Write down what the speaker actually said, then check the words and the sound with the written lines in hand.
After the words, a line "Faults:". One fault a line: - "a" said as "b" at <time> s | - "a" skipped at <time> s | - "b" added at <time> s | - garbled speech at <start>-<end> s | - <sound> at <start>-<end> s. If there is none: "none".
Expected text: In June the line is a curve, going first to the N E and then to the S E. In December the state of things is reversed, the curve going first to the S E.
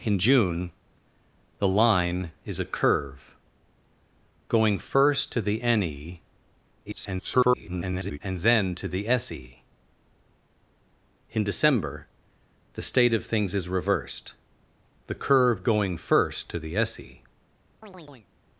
In June the line is a curve, going first to the N E [garbled] and then to the S E. In December the state of things is reversed, the curve going first to the S E.
Faults:
- garbled speech at 6.9-8.2 s
- chirp at 17.8-18.3 s